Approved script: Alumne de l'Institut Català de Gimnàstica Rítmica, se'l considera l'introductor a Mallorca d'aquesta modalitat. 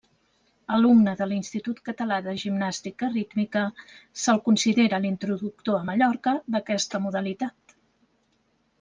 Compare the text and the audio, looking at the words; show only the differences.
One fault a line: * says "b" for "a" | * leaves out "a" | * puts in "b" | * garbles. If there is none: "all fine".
all fine